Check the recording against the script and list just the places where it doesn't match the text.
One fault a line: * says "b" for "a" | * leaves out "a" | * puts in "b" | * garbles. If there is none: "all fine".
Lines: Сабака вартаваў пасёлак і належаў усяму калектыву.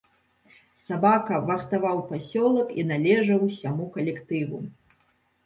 all fine